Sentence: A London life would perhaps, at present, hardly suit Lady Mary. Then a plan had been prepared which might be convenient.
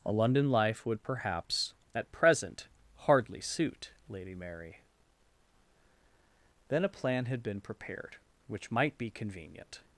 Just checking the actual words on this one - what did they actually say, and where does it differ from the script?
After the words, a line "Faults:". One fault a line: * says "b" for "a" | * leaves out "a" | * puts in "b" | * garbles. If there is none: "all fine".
A London life would perhaps, at present, hardly suit Lady Mary. Then a plan had been prepared which might be convenient.
Faults:
all fine